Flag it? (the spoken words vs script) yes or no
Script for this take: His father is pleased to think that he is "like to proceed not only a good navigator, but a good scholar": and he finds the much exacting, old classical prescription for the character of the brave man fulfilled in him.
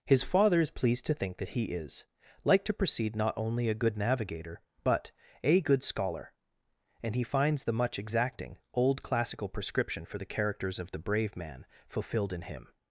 yes